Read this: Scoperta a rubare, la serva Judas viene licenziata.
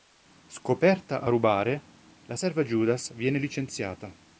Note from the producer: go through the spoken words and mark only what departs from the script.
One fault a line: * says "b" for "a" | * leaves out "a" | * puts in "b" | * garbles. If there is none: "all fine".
all fine